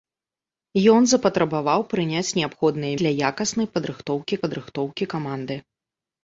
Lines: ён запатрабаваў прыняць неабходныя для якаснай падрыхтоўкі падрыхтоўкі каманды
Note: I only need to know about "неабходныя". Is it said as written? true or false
true